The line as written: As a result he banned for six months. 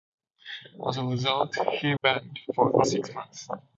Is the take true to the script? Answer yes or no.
yes